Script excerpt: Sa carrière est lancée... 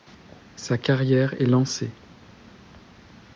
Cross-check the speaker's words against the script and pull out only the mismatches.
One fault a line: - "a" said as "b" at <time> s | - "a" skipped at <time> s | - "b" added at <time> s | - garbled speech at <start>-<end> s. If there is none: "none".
none